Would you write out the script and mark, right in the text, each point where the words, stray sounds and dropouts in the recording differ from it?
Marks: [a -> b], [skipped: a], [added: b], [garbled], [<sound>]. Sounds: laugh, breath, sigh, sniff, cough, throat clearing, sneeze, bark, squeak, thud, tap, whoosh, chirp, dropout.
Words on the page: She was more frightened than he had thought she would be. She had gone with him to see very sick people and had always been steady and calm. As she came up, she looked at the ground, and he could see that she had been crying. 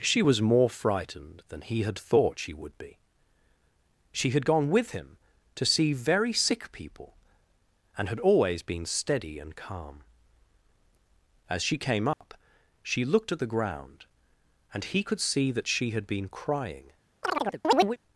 She was more frightened than he had thought she would be. She had gone with him to see very sick people and had always been steady and calm. As she came up, [dropout] she looked at the ground, and he could see that she had been crying. [chirp]